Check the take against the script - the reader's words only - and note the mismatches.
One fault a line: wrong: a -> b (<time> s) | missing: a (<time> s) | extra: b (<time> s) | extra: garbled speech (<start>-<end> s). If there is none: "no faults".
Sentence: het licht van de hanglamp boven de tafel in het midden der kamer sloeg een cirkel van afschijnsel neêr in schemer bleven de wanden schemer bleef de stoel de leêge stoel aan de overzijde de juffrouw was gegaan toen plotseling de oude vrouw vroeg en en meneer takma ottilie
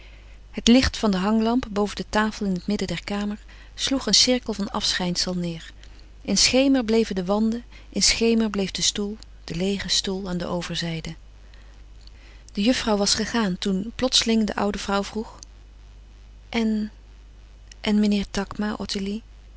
extra: in (7.9 s)